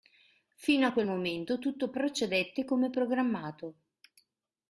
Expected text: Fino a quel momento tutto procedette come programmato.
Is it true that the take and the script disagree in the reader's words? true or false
false